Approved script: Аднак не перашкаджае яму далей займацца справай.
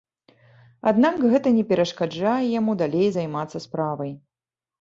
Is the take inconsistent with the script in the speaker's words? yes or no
yes